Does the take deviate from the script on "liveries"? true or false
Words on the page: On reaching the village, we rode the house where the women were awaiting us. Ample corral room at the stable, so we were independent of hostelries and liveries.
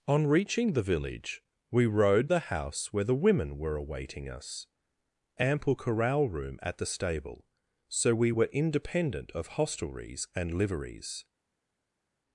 false